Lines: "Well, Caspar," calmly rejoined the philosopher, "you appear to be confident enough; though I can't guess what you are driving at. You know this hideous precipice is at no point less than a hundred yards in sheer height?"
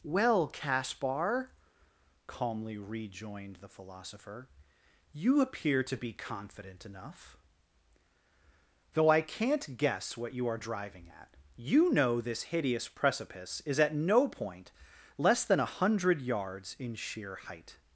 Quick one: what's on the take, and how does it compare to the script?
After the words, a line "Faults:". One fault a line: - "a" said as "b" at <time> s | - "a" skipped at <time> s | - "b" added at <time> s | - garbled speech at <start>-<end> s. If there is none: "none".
"Well, Caspar," calmly rejoined the philosopher, "you appear to be confident enough; though I can't guess what you are driving at. You know this hideous precipice is at no point less than a hundred yards in sheer height?"
Faults:
none